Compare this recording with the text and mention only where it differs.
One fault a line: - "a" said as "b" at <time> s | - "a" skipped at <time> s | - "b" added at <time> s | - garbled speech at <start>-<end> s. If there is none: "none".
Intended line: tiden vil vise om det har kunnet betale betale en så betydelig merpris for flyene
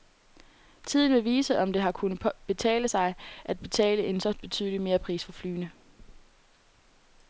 - "sig at" added at 2.8 s